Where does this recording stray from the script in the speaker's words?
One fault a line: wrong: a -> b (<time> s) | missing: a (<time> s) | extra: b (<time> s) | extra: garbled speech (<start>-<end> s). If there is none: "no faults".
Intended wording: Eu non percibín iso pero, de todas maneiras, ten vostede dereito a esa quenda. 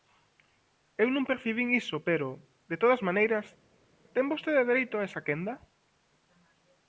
no faults